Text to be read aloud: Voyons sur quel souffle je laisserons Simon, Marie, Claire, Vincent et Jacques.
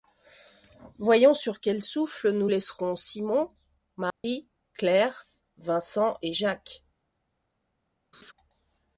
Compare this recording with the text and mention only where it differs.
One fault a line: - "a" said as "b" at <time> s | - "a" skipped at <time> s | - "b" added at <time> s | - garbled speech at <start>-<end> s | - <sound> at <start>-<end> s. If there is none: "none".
- "je" said as "nous" at 2.3 s
- dropout at 4.1-4.2 s
- laugh at 8.1-8.3 s